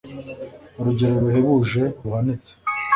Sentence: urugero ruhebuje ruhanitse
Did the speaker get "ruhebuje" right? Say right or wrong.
right